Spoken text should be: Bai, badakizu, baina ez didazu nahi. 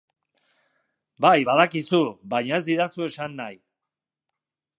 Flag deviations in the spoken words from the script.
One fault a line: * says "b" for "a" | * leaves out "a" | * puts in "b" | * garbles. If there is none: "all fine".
* puts in "esan"